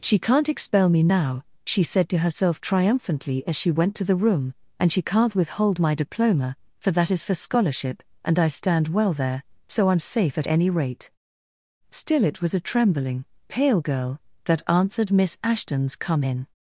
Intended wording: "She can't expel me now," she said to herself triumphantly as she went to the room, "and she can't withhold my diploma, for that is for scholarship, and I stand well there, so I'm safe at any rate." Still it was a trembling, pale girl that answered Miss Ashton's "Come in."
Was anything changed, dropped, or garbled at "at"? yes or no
no